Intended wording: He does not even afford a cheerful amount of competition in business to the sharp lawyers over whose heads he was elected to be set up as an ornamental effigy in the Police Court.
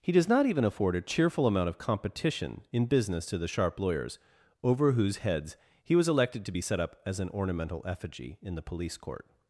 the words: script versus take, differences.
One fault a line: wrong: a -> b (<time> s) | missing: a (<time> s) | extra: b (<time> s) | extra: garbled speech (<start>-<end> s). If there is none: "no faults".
no faults